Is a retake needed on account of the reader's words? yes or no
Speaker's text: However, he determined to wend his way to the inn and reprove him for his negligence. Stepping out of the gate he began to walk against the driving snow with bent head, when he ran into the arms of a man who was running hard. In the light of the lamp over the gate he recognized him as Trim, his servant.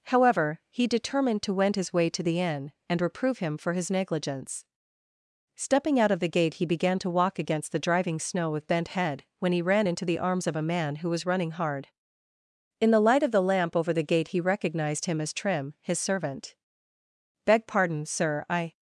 yes